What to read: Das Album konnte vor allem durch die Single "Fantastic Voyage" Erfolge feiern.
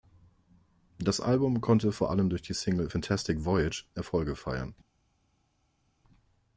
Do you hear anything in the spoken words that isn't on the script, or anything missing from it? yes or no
no